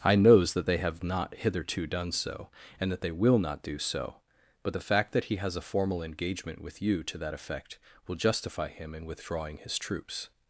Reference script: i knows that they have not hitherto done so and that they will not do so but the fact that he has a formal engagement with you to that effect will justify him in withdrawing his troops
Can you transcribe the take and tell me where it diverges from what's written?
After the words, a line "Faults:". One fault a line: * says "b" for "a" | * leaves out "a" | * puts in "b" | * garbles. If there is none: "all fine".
i knows that they have not hitherto done so and that they will not do so but the fact that he has a formal engagement with you to that effect will justify him in withdrawing his troops
Faults:
all fine